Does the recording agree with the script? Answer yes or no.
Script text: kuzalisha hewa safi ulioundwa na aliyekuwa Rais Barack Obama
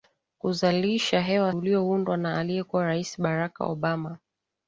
no